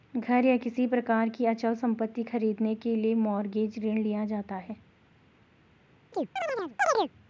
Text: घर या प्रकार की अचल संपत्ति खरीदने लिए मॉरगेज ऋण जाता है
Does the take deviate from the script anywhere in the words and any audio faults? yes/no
yes